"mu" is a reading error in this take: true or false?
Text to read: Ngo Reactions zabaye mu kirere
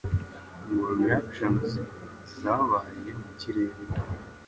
false